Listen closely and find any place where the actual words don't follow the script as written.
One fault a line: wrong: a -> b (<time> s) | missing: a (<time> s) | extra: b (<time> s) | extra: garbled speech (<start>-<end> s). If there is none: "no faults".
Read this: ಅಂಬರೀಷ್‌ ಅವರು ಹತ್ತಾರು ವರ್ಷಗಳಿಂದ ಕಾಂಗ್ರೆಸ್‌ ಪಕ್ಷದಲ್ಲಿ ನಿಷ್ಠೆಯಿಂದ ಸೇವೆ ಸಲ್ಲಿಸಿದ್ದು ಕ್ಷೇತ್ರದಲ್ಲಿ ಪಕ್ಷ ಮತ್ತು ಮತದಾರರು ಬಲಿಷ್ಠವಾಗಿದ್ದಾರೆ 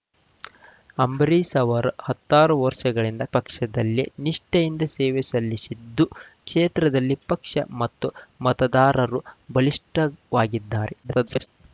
missing: ಕಾಂಗ್ರೆಸ್ (3.2 s)
extra: garbled speech (11.0-11.5 s)